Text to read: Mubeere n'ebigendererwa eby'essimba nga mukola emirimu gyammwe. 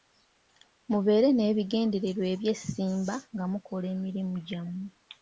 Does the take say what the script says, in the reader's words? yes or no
yes